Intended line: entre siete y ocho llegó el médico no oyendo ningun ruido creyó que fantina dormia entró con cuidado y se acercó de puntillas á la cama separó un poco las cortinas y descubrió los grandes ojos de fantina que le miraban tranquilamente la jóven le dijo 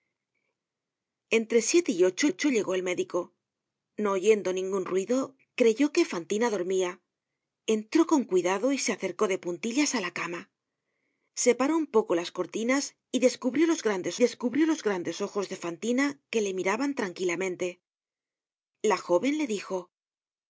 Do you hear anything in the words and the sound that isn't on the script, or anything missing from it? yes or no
yes